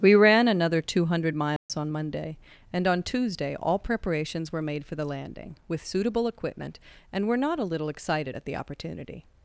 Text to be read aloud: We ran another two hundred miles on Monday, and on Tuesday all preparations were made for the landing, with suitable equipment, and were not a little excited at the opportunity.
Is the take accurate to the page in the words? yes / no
yes